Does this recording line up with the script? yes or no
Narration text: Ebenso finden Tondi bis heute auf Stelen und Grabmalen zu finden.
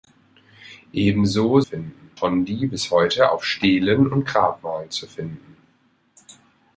yes